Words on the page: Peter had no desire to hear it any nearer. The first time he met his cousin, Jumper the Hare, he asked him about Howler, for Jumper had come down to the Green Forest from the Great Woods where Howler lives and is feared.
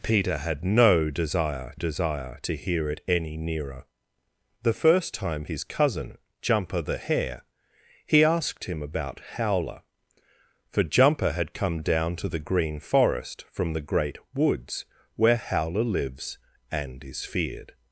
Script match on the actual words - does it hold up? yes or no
no